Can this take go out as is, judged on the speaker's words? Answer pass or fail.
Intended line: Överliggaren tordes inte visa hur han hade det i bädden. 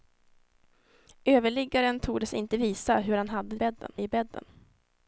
fail